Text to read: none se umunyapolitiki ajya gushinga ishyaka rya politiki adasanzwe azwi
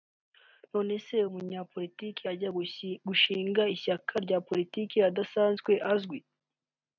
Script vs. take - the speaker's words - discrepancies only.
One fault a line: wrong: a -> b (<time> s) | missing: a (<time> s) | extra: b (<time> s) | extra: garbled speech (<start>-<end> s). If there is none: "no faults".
no faults